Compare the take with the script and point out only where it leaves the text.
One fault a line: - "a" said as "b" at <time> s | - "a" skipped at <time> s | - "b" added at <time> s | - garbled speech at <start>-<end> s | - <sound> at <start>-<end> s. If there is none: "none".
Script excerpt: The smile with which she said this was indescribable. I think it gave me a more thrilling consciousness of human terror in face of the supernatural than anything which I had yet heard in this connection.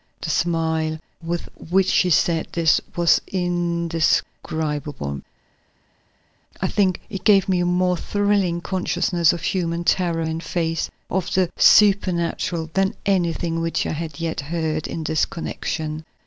none